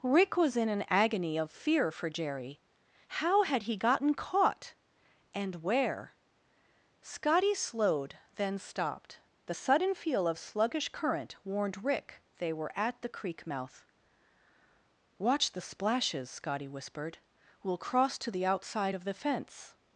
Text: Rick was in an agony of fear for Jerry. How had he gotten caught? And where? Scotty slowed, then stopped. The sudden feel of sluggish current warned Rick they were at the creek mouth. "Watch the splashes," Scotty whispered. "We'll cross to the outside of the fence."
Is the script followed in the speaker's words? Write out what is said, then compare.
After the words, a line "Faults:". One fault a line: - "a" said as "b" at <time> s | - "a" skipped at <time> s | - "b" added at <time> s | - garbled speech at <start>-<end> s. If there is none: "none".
Rick was in an agony of fear for Jerry. How had he gotten caught? And where? Scotty slowed, then stopped. The sudden feel of sluggish current warned Rick they were at the creek mouth. "Watch the splashes," Scotty whispered. "We'll cross to the outside of the fence."
Faults:
none